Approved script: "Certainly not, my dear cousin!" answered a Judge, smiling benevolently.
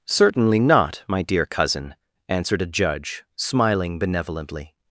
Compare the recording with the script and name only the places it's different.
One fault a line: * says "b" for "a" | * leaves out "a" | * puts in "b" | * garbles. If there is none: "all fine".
all fine